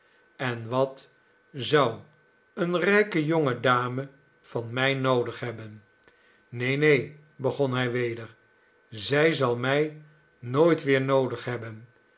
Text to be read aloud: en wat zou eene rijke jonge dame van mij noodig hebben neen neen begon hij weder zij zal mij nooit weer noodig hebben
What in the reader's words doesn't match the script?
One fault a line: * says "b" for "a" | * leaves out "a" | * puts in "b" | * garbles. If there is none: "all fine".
all fine